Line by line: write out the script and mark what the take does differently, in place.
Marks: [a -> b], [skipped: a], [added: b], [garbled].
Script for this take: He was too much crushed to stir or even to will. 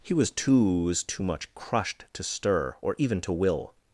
He was too [added: was too] much crushed to stir or even to will.